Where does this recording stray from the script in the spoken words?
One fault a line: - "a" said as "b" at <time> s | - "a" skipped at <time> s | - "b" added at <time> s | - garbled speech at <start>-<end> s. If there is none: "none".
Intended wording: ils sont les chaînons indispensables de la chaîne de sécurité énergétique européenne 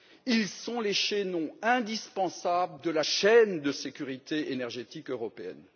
none